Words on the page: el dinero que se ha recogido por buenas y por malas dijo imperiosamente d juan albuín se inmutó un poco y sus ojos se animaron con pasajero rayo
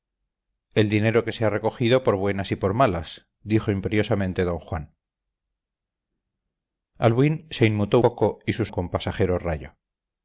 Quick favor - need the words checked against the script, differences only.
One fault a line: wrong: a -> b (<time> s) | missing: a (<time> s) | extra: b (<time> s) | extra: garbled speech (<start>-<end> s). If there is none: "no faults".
missing: un (8.0 s)
missing: ojos se animaron (8.7 s)